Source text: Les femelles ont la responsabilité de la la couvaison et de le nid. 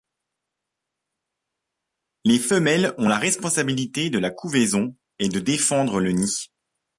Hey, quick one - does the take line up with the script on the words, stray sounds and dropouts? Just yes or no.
no